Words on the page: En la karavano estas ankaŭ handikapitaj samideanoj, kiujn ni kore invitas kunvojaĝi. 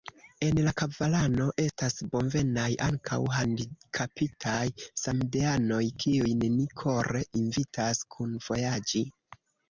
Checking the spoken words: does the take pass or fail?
fail